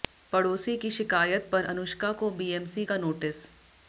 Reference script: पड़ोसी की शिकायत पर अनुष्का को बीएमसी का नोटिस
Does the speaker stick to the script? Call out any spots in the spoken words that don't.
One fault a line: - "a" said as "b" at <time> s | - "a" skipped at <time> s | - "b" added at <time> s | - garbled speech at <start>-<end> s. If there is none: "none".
none